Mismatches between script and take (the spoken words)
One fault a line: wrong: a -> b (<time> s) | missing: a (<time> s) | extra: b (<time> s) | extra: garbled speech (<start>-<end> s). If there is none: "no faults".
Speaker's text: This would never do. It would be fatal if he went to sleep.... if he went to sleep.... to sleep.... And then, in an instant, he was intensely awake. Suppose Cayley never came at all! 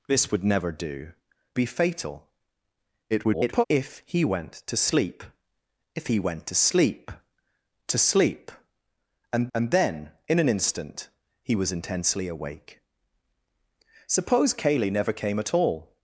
missing: It would (1.1 s)
extra: garbled speech (3.1-3.6 s)
extra: and (9.5 s)